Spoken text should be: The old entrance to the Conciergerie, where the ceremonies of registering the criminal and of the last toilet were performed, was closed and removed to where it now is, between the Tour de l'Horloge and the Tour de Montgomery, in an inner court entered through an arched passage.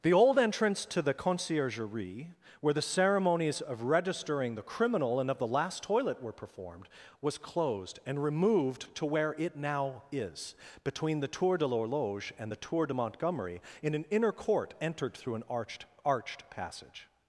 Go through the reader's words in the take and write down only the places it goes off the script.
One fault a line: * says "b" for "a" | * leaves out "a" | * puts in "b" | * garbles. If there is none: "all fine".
* puts in "arched"